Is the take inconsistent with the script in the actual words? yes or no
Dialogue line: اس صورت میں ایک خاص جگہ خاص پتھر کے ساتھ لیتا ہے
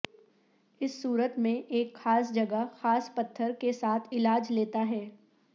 yes